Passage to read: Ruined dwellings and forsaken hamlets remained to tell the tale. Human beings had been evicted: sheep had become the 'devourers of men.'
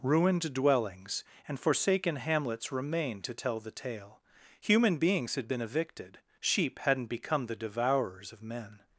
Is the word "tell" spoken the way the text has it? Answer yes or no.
yes